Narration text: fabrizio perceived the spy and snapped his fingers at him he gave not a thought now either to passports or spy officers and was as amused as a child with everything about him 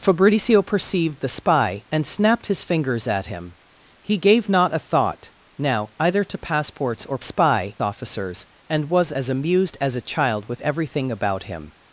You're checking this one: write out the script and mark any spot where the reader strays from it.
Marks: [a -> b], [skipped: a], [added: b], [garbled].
fabrizio perceived the spy and snapped his fingers at him he gave not a thought now either to passports or spy officers and was as amused as a child with everything about him